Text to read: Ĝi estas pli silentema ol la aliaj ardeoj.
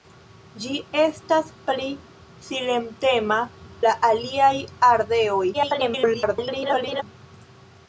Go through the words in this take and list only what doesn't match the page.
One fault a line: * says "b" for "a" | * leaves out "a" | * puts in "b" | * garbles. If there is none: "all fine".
* leaves out "ol"
* garbles